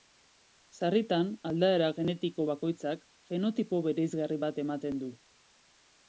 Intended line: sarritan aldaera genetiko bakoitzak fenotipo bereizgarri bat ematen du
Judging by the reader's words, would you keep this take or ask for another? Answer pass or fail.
pass